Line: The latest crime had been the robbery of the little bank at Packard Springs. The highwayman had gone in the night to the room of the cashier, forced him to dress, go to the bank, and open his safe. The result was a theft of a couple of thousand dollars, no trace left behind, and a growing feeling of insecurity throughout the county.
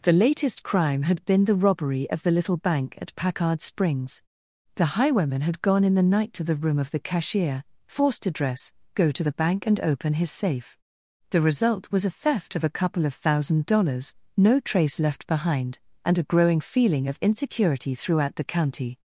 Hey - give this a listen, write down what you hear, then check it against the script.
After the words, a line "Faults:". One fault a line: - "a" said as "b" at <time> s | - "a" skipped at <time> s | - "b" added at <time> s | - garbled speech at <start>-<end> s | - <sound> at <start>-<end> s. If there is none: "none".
The latest crime had been the robbery of the little bank at Packard Springs. The highwayman had gone in the night to the room of the cashier, forced to dress, go to the bank, and open his safe. The result was a theft of a couple of thousand dollars, no trace left behind, and a growing feeling of insecurity throughout the county.
Faults:
- "him" skipped at 8.2 s